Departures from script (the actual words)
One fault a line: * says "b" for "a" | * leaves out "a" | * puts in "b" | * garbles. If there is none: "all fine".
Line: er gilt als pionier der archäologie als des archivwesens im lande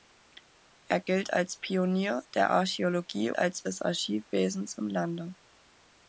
all fine